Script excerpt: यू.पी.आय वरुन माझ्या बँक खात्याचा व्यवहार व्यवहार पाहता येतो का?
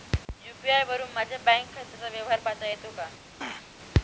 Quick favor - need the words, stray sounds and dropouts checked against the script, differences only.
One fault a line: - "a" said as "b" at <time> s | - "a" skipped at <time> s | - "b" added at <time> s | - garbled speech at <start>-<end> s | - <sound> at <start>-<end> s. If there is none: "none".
- "व्यवहार" skipped at 2.4 s
- throat clearing at 3.4-3.8 s